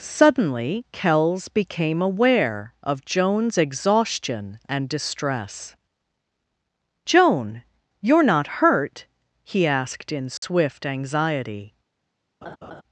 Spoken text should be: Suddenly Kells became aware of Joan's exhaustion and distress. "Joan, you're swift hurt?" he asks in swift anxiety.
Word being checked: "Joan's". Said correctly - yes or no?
yes